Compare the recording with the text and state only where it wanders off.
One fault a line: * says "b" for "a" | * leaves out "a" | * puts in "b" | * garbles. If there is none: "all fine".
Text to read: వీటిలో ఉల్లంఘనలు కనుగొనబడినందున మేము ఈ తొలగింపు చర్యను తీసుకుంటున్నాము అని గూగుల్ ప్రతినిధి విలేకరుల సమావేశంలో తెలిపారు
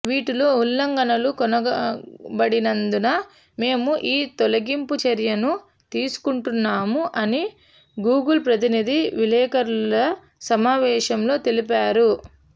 all fine